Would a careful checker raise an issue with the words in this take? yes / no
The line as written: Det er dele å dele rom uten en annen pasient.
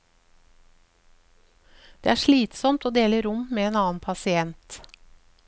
yes